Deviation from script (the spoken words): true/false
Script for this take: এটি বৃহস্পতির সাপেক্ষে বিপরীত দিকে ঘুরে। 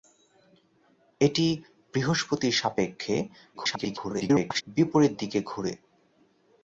true